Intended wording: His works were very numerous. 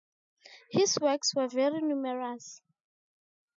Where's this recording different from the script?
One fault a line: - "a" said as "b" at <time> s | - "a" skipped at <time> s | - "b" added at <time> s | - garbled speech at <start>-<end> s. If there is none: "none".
none